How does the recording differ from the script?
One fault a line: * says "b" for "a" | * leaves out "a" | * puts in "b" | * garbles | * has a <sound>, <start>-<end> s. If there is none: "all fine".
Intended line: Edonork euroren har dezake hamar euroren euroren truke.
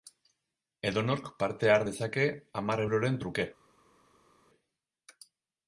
* says "parte" for "euroren"
* leaves out "euroren"